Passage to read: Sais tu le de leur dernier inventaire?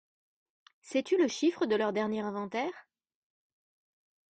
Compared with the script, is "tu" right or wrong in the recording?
right